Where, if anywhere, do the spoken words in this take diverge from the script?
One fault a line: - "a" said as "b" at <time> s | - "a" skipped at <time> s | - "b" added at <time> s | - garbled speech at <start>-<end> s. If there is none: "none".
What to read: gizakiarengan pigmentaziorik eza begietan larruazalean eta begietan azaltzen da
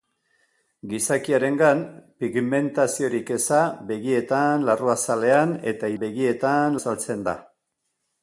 none